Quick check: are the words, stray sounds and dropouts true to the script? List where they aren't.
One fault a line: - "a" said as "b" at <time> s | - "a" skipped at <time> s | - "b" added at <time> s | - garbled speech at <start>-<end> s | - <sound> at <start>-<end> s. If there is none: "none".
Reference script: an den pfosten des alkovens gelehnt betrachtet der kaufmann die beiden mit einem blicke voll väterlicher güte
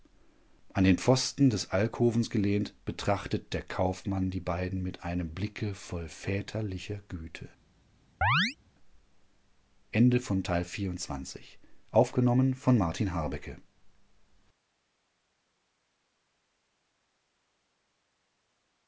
- chirp at 8.2-8.6 s